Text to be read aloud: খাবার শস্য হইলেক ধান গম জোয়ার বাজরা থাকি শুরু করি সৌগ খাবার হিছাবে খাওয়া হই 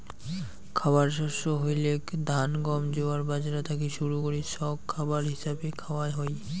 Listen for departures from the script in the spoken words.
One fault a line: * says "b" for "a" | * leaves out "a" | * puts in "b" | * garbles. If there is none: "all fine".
all fine